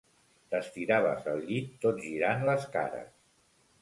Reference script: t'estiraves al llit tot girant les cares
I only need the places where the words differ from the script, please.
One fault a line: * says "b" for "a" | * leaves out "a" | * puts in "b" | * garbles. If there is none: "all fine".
all fine